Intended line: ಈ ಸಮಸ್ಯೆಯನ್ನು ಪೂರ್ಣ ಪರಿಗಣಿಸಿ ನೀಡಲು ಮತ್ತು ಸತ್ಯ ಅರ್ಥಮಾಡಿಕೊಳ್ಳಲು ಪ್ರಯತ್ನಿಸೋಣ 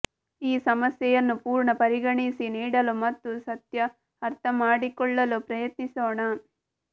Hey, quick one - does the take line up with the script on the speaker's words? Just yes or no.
yes